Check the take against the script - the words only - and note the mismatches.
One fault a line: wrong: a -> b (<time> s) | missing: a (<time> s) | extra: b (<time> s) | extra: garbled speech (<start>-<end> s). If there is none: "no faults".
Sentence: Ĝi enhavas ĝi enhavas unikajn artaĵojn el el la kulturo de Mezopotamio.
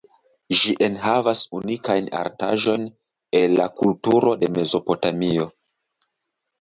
missing: ĝi enhavas (1.4 s)
missing: el (3.6 s)